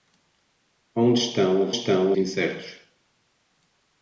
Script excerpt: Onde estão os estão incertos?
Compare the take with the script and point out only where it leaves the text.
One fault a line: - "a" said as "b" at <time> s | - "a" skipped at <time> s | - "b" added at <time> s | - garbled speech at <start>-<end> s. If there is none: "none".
none